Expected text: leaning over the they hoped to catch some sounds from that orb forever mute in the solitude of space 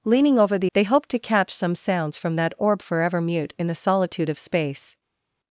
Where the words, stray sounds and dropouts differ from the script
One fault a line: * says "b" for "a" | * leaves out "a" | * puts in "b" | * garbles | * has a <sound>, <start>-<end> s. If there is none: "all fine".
all fine